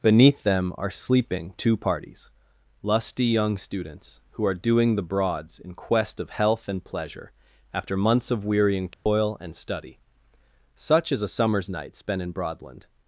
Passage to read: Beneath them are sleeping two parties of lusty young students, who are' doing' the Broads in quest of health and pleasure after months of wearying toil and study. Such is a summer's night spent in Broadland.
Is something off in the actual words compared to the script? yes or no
yes